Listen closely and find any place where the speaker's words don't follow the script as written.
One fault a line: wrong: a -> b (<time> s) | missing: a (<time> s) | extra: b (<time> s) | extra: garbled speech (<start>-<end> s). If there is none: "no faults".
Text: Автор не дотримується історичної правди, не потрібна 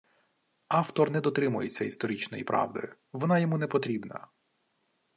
extra: вона йому (3.1 s)